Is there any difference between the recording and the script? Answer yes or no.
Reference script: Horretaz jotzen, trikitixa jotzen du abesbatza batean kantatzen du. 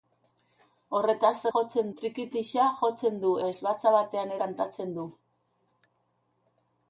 no